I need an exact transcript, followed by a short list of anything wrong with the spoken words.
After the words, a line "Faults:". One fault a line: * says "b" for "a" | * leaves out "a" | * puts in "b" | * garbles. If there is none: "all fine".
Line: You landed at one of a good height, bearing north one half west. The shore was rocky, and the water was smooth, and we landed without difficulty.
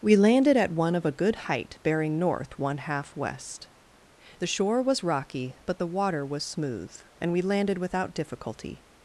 We landed at one of a good height, bearing north one half west. The shore was rocky, but the water was smooth, and we landed without difficulty.
Faults:
* says "We" for "You"
* says "but" for "and"